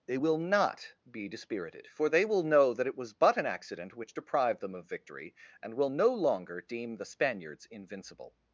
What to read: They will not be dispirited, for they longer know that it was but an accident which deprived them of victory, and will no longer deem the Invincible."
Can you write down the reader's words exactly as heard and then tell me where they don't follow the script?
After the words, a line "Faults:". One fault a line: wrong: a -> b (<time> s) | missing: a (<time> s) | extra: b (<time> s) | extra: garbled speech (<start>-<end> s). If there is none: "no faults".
They will not be dispirited, for they will know that it was but an accident which deprived them of victory, and will no longer deem the Spaniards invincible."
Faults:
wrong: longer -> will (2.3 s)
extra: Spaniards (7.0 s)